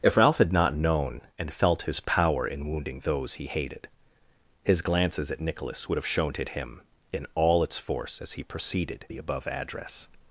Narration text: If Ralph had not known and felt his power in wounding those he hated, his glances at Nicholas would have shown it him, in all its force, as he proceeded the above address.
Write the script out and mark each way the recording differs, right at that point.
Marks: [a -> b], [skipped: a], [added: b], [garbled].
If Ralph had not known and felt his power in wounding those he hated, his glances at Nicholas would have shown it him, in all its force, as he proceeded the above address.